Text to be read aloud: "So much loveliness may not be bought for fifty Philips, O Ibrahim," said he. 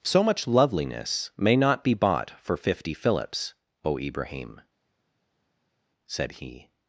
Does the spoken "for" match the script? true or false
true